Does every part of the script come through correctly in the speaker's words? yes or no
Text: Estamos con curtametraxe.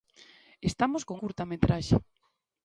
yes